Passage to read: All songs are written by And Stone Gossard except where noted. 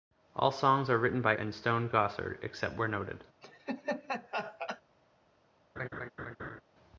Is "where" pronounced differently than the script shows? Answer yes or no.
no